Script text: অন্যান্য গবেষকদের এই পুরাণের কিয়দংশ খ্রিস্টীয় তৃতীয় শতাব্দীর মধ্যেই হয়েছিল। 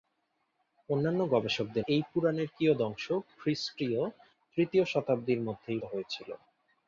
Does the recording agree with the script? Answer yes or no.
yes